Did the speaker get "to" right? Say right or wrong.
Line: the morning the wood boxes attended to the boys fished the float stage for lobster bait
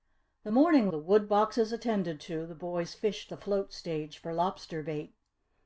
right